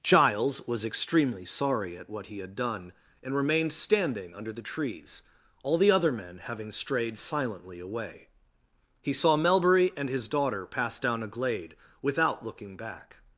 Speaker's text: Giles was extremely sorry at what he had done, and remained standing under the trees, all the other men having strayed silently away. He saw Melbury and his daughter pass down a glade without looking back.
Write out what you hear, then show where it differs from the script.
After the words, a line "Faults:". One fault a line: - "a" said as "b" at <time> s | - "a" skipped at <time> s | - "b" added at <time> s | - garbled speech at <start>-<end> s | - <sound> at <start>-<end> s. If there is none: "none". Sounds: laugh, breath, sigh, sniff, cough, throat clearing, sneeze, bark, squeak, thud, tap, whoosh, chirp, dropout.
Giles was extremely sorry at what he had done, and remained standing under the trees, all the other men having strayed silently away. He saw Melbury and his daughter pass down a glade without looking back.
Faults:
none